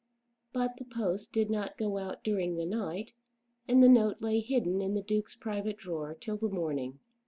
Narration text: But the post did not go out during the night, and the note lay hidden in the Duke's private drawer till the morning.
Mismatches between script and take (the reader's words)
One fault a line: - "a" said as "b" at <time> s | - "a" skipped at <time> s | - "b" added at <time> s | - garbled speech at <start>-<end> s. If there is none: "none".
none